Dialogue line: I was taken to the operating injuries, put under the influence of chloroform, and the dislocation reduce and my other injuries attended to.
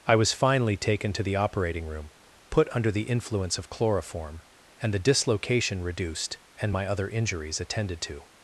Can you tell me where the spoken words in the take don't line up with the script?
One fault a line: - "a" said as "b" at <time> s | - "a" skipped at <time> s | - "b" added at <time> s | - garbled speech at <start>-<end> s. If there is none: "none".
- "finally" added at 0.3 s
- "injuries" said as "room" at 1.9 s
- "reduce" said as "reduced" at 5.8 s